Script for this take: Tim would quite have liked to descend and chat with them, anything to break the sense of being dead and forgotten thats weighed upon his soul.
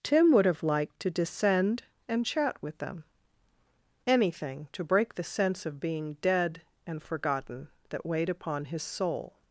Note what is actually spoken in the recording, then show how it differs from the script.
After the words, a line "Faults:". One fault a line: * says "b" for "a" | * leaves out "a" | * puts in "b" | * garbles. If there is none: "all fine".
Tim would have liked to descend and chat with them, anything to break the sense of being dead and forgotten that weighed upon his soul.
Faults:
* leaves out "quite"
* says "that" for "thats"